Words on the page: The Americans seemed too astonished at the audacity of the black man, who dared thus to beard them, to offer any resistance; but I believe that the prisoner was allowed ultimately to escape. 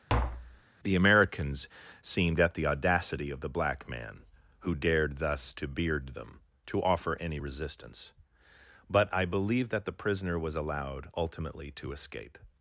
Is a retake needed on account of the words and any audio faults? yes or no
yes